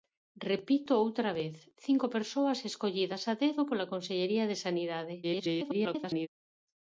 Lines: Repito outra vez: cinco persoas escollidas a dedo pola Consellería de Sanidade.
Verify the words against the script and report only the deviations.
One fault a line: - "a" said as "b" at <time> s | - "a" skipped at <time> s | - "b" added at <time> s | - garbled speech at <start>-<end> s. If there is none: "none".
- garbled speech at 5.2-6.3 s